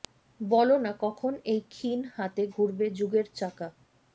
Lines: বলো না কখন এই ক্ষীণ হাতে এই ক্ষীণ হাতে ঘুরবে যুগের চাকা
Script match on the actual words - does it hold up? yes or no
no